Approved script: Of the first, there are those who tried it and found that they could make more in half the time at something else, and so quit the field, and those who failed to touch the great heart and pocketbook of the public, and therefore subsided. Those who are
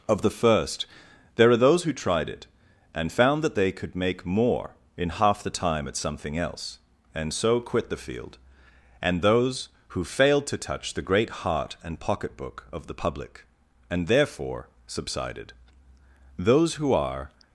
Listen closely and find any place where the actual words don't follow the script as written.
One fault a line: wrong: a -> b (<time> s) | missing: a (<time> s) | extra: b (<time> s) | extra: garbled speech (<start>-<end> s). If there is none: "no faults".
no faults